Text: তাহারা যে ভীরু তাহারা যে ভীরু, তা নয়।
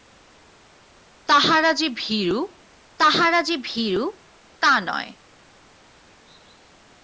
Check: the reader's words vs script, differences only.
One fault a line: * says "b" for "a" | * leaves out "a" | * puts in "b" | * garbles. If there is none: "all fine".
all fine